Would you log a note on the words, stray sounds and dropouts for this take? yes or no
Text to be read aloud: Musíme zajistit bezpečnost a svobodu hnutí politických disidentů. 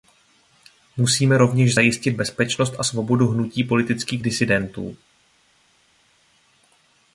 yes